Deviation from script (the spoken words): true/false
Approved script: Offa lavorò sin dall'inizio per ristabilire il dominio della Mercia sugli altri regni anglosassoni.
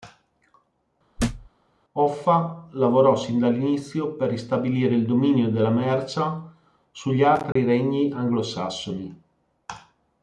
false